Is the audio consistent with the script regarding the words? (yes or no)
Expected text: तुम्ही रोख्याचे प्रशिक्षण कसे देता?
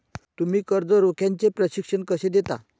no